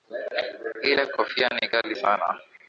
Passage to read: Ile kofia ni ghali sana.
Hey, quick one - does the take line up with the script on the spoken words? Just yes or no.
yes